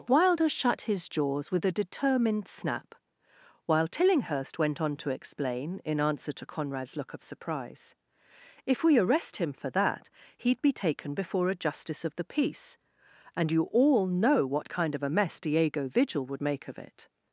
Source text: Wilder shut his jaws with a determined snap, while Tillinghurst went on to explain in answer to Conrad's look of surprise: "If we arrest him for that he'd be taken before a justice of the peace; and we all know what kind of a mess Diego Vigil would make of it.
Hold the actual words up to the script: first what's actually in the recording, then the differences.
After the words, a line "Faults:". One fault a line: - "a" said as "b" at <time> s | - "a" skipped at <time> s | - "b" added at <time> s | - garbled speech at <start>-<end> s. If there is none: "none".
Wilder shut his jaws with a determined snap, while Tillinghurst went on to explain in answer to Conrad's look of surprise: "If we arrest him for that he'd be taken before a justice of the peace; and you all know what kind of a mess Diego Vigil would make of it.
Faults:
- "we" said as "you" at 13.5 s